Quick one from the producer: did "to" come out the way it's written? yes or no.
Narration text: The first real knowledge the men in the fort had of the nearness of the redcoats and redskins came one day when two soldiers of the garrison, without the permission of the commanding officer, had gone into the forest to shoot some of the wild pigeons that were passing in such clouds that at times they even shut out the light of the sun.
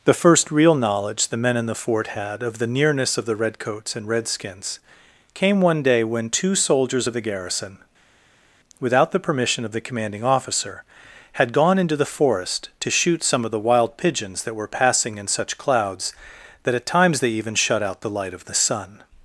yes